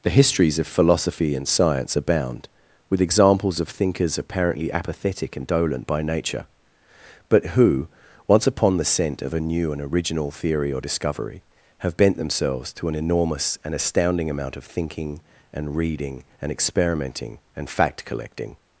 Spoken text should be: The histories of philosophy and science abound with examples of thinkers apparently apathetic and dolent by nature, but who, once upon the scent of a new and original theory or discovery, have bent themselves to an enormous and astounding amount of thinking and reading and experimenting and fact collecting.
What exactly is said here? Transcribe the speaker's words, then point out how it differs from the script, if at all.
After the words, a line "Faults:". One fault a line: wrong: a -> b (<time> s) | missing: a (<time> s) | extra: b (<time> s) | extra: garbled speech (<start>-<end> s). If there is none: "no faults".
The histories of philosophy and science abound with examples of thinkers apparently apathetic and dolent by nature, but who, once upon the scent of a new and original theory or discovery, have bent themselves to an enormous and astounding amount of thinking and reading and experimenting and fact collecting.
Faults:
no faults